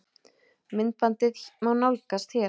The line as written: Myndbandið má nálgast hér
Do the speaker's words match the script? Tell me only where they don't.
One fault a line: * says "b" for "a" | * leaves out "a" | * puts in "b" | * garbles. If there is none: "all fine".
all fine